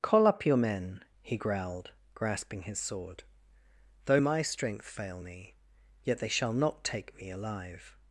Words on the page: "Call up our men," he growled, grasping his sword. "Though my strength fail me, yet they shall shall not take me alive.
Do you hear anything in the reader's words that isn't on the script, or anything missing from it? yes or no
yes